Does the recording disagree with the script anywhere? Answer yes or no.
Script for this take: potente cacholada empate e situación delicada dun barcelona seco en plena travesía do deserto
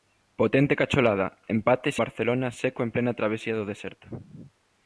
yes